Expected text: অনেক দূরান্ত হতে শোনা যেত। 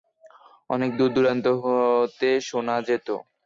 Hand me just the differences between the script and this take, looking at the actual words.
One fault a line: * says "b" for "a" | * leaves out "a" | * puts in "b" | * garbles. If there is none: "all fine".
* puts in "দূর"